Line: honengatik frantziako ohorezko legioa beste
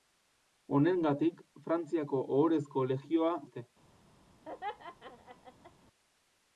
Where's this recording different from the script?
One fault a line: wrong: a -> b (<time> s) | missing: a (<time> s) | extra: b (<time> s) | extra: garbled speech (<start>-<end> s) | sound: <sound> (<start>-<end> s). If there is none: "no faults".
sound: laugh (4.4-5.7 s)